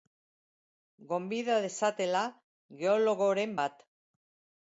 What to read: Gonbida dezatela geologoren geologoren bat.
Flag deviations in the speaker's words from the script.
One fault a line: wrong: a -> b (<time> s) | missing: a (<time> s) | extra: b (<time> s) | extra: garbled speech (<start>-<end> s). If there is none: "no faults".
missing: geologoren (3.5 s)